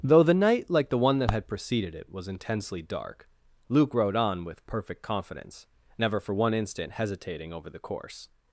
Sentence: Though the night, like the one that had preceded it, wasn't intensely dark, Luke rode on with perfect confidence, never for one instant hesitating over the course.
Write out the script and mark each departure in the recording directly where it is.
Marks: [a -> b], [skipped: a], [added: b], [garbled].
Though the night, like the one that had preceded it, [wasn't -> was] intensely dark, Luke rode on with perfect confidence, never for one instant hesitating over the course.